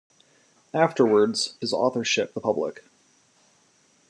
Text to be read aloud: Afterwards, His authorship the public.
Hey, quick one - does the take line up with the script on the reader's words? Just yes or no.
yes